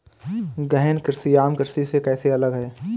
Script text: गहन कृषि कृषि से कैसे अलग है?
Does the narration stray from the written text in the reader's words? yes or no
yes